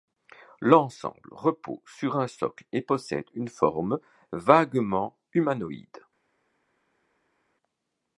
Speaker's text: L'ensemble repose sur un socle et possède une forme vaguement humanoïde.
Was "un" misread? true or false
false